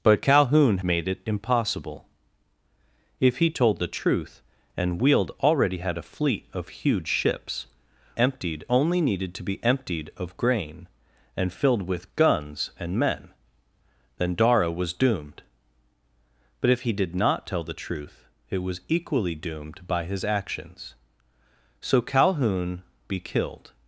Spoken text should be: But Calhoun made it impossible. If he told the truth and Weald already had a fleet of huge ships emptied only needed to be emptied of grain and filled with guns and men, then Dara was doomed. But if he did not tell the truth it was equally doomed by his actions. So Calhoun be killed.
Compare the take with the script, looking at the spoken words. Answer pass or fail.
pass